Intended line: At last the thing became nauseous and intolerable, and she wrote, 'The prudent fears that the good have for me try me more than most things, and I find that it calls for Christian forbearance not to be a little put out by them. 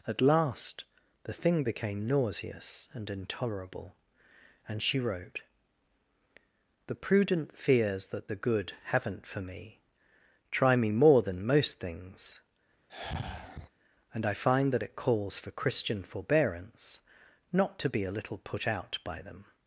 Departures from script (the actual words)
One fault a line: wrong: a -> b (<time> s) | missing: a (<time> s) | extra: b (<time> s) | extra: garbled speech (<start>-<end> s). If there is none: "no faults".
wrong: have -> haven't (8.8 s)